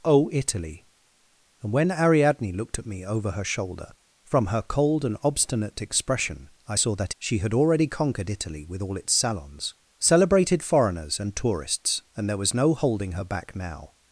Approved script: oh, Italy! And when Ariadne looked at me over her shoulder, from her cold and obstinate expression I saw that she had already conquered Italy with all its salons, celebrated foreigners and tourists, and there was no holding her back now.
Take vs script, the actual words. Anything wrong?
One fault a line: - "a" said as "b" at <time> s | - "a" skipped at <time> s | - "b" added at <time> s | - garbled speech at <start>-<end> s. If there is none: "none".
none